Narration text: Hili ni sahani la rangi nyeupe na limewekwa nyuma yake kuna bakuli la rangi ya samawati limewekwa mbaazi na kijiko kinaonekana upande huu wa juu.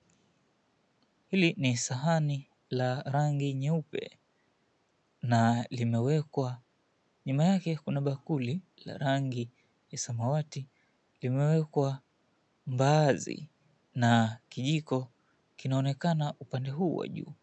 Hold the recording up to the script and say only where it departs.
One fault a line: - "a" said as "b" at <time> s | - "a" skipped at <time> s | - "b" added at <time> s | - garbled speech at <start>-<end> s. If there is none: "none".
none